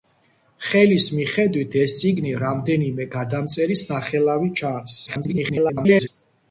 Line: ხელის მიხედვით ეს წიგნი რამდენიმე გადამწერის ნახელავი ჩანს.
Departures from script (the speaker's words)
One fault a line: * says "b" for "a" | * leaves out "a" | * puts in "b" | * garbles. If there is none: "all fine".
* garbles